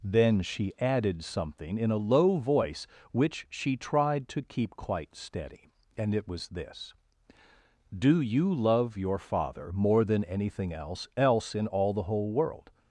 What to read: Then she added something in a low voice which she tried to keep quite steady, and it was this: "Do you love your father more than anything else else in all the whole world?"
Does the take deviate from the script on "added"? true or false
false